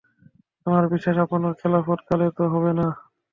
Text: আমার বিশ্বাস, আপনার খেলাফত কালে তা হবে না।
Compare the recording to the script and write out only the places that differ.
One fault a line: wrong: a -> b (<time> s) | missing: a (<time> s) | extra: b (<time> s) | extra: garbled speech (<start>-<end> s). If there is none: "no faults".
no faults